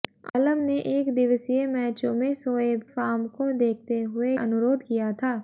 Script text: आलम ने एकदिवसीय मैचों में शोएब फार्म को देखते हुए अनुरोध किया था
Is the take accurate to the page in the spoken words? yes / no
yes